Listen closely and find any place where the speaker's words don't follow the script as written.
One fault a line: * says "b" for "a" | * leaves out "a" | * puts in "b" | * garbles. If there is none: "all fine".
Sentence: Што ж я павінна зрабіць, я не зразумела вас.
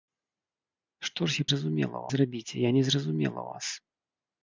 * says "зразумела" for "павінна"